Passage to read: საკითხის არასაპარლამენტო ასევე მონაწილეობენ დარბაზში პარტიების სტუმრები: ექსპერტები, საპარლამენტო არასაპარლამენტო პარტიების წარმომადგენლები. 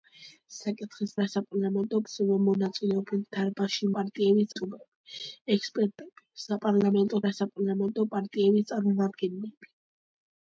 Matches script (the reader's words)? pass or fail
pass